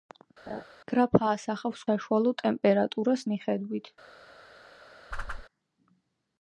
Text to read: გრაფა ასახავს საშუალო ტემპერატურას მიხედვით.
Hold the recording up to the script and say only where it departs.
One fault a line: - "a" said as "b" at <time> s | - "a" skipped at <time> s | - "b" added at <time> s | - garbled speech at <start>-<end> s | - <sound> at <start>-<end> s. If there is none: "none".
- laugh at 0.5-0.6 s
- whoosh at 5.1-5.5 s